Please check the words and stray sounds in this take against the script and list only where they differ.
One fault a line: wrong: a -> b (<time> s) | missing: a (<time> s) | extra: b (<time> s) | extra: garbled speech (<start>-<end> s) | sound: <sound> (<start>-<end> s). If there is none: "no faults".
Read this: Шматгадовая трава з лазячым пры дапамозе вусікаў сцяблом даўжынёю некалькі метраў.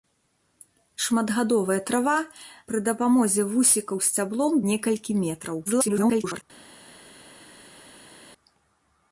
missing: з лазячым (2.1 s)
missing: даўжынёю (4.5 s)
extra: garbled speech (5.7-6.4 s)